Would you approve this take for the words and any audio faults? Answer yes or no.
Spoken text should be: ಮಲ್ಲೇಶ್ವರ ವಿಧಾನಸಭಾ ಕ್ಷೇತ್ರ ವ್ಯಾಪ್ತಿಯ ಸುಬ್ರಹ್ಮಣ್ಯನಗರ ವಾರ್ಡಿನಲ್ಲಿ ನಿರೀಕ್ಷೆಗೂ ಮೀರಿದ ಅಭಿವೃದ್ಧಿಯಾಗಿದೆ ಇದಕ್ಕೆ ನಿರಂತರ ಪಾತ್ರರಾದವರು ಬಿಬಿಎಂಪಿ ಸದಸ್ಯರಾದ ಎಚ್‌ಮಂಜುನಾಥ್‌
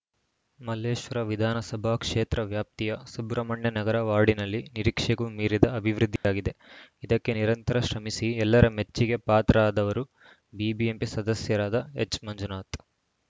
no